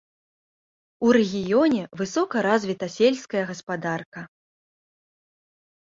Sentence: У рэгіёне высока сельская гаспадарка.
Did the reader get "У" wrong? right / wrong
right